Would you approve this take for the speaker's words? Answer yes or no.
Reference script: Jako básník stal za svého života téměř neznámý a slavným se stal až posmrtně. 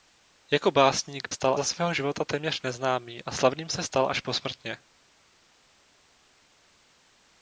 yes